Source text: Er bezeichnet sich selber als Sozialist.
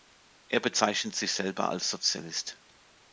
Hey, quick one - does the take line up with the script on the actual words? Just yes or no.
yes